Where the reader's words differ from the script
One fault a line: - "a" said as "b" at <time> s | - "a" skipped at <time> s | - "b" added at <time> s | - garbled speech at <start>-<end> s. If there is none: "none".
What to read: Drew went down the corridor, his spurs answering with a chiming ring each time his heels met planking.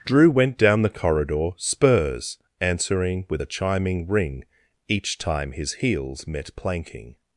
- "his" skipped at 1.5 s